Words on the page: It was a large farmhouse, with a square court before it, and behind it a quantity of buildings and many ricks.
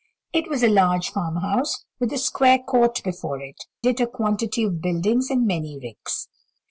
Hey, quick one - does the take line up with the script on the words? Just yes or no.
no